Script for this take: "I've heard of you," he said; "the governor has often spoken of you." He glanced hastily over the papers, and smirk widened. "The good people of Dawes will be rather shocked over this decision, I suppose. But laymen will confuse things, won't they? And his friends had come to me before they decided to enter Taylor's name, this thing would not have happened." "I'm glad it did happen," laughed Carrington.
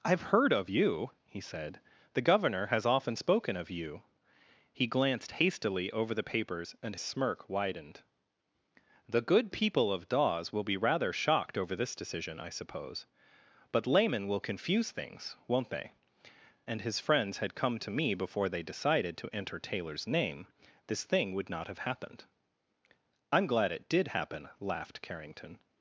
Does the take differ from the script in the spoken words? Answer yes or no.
no